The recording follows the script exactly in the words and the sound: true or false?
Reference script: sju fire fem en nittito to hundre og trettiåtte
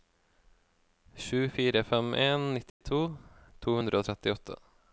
false